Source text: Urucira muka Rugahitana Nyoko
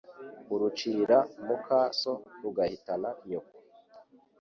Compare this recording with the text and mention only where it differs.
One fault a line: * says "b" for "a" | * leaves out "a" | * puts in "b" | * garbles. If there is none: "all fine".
* puts in "So"